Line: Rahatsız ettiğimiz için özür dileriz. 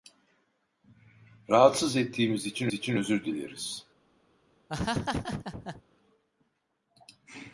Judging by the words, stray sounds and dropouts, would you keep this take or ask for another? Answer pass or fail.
fail